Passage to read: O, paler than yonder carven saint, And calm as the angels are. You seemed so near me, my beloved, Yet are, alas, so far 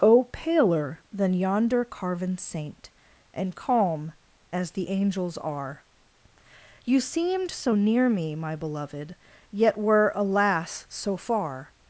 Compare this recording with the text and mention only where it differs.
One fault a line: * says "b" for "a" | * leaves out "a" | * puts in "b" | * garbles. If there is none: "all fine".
* says "were" for "are"